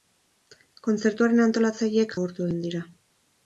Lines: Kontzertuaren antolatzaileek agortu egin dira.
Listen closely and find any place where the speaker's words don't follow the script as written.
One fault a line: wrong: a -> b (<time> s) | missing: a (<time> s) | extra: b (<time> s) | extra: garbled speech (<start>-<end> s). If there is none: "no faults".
no faults